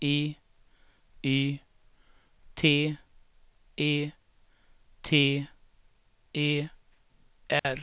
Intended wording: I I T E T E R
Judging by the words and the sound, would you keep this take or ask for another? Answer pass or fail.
fail